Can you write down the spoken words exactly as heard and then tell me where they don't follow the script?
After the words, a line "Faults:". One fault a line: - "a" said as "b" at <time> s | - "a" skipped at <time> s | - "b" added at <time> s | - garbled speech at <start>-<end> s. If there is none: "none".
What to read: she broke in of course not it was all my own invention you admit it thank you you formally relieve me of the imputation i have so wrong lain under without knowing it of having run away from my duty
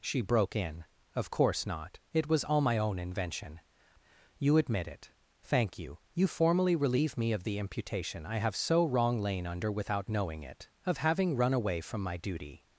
she broke in of course not it was all my own invention you admit it thank you you formally relieve me of the imputation i have so wrong lain under without knowing it of having run away from my duty
Faults:
none